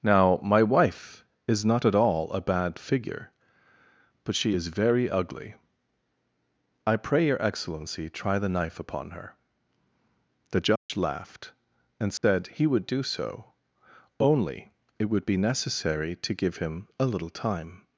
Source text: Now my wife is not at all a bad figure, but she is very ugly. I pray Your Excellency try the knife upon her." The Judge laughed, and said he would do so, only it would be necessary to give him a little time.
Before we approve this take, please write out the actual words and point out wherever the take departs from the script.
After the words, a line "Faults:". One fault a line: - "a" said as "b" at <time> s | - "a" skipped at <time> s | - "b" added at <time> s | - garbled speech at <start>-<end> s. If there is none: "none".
Now my wife is not at all a bad figure, but she is very ugly. I pray Your Excellency try the knife upon her." The Judge laughed, and said he would do so, only it would be necessary to give him a little time.
Faults:
none